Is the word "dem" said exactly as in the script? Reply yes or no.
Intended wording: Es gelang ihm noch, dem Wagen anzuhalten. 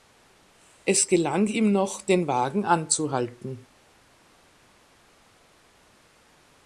no